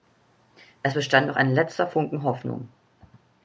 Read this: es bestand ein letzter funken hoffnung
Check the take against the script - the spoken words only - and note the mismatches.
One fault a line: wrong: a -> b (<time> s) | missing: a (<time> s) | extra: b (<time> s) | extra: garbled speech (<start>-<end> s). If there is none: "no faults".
extra: noch (1.3 s)